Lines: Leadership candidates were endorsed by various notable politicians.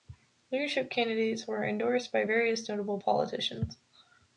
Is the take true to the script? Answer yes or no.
yes